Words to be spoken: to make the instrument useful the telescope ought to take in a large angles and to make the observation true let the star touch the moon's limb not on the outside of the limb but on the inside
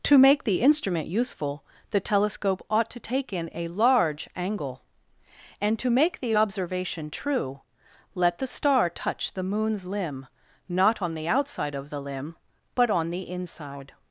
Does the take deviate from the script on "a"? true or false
false